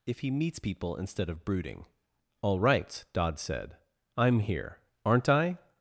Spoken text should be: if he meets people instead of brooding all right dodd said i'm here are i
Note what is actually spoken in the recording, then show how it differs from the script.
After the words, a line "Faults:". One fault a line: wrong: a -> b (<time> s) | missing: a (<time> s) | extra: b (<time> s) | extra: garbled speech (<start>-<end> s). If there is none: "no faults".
if he meets people instead of brooding all right dodd said i'm here aren't i
Faults:
wrong: are -> aren't (5.0 s)